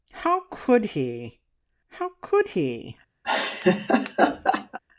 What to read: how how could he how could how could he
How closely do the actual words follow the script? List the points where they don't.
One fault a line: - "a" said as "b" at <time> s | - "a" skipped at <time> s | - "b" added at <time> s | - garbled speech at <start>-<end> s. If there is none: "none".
- "how" skipped at 0.5 s
- "how could" skipped at 2.5 s